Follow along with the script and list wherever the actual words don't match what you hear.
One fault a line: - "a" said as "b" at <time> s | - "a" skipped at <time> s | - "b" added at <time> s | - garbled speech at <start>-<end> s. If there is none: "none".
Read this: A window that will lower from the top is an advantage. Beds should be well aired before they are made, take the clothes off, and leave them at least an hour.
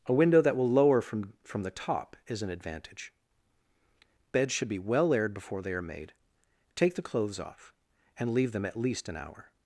- "from" added at 1.4 s